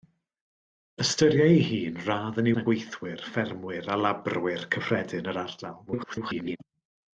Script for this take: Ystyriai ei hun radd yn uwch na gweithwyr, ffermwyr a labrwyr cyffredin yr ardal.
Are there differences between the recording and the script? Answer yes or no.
yes